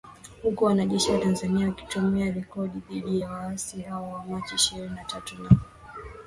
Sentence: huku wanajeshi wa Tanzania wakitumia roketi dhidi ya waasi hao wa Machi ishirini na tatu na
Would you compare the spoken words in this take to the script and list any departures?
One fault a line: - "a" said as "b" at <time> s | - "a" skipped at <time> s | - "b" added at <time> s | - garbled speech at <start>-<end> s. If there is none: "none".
none